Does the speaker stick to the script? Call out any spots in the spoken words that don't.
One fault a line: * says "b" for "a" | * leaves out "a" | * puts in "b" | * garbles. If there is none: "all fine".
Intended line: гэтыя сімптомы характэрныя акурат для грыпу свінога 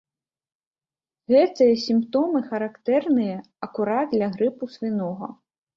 all fine